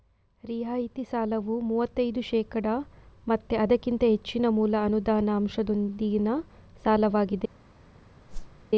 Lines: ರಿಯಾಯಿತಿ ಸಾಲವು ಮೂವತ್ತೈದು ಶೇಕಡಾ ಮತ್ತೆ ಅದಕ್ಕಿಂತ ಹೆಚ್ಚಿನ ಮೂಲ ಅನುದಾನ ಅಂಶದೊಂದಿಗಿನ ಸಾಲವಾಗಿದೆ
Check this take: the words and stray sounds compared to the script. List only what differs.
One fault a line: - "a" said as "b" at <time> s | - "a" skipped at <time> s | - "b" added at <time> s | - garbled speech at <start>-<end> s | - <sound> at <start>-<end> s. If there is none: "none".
- whoosh at 8.3-8.6 s